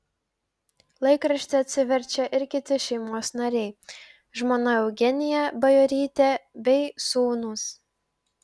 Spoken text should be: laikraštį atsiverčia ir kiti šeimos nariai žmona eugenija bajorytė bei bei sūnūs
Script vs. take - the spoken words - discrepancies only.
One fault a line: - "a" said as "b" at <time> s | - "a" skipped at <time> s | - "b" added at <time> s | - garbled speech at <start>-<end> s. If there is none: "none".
- "bei" skipped at 6.8 s